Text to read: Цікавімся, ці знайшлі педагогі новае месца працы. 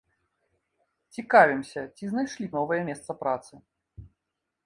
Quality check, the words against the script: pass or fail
fail